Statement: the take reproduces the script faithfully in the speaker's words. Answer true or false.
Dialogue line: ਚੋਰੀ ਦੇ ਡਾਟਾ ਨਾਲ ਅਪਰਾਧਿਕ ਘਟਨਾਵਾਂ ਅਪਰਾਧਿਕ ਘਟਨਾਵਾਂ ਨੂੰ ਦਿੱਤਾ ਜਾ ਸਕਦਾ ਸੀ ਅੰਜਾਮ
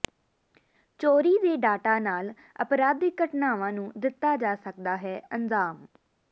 false